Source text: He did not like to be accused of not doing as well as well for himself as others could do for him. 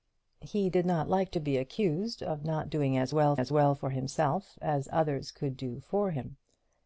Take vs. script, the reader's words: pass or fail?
pass